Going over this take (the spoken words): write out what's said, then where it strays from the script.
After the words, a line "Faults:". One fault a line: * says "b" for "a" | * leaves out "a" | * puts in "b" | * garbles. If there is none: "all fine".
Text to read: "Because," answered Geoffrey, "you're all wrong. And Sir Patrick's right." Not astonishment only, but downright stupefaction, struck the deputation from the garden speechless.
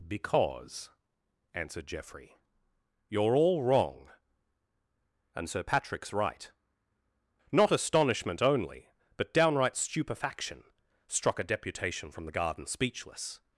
"Because," answered Geoffrey, "you're all wrong. And Sir Patrick's right." Not astonishment only, but downright stupefaction, struck a deputation from the garden speechless.
Faults:
* says "a" for "the"